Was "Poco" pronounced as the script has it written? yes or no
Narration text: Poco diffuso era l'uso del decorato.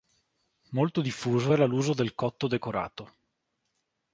no